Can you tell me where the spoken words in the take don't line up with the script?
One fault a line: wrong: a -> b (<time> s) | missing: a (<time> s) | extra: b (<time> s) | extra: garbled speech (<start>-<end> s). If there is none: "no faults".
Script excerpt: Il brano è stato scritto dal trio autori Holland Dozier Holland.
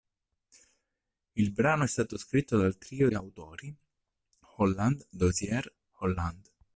no faults